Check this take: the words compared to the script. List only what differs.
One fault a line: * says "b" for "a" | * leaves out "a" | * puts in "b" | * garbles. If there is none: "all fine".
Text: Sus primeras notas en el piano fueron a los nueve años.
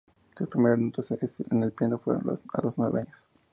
all fine